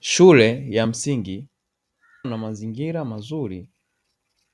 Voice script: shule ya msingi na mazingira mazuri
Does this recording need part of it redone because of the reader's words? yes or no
no